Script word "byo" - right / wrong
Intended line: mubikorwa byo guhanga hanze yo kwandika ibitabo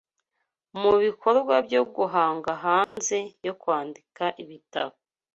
right